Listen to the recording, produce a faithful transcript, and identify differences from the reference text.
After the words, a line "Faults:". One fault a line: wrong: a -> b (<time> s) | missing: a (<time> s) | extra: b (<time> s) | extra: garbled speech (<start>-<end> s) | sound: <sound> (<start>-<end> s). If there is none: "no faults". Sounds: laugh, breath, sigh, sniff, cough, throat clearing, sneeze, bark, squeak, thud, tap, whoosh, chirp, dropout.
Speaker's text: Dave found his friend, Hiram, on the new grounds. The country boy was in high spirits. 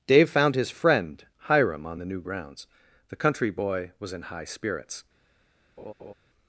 Dave found his friend, Hiram, on the new grounds. The country boy was in high spirits.
Faults:
sound: laugh (5.8-6.1 s)